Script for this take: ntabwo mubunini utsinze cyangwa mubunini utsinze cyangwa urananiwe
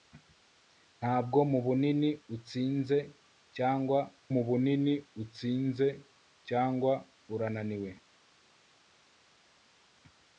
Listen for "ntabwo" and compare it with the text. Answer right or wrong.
right